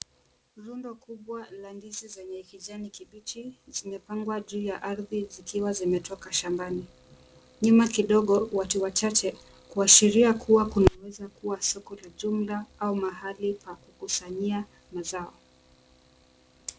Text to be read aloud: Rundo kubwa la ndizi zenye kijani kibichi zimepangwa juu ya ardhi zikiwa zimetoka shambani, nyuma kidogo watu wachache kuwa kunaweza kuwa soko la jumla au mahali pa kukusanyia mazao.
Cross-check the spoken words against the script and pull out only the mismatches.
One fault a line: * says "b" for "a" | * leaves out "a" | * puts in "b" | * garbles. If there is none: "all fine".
* puts in "kuashiria"